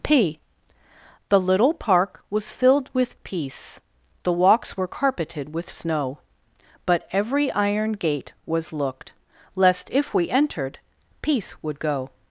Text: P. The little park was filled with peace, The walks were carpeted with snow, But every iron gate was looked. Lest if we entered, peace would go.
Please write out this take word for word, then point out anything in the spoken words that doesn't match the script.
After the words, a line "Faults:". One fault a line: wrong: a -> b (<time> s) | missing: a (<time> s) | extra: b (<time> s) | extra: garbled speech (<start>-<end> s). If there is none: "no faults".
P. The little park was filled with peace, The walks were carpeted with snow, But every iron gate was looked. Lest if we entered, peace would go.
Faults:
no faults